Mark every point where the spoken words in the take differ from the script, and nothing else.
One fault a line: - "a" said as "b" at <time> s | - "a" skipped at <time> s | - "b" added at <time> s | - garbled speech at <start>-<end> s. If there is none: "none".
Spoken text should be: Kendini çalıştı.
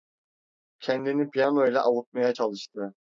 - "piyano ile avutmaya" added at 1.3 s